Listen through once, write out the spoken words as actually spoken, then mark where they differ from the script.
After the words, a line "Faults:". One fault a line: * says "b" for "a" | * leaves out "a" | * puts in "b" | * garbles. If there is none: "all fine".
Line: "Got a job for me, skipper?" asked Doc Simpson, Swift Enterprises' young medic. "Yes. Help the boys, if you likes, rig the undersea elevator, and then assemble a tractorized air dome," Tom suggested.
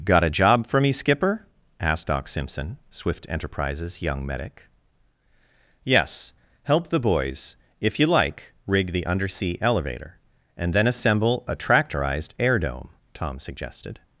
"Got a job for me, skipper?" asked Doc Simpson, Swift Enterprises' young medic. "Yes. Help the boys, if you like, rig the undersea elevator, and then assemble a tractorized air dome," Tom suggested.
Faults:
* says "like" for "likes"